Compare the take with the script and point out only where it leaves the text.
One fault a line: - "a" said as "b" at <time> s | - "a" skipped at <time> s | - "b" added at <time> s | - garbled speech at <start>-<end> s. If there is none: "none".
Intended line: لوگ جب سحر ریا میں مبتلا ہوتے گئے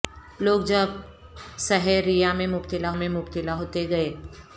- "میں مبتلا" added at 2.9 s